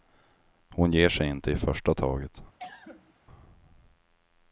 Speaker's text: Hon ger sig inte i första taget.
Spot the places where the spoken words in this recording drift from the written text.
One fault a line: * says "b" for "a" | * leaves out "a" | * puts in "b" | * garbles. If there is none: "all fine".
all fine